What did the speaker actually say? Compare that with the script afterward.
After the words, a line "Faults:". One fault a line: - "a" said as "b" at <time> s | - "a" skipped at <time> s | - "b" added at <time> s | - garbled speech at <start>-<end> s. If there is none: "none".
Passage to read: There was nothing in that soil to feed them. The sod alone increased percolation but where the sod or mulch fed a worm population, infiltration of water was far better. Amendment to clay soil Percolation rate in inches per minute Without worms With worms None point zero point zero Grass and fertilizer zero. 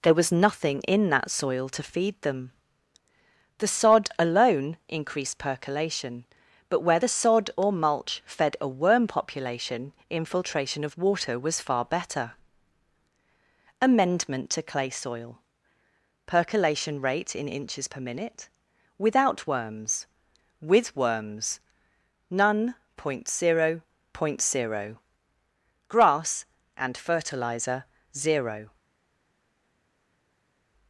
There was nothing in that soil to feed them. The sod alone increased percolation but where the sod or mulch fed a worm population, infiltration of water was far better. Amendment to clay soil Percolation rate in inches per minute Without worms With worms None point zero point zero Grass and fertilizer zero.
Faults:
none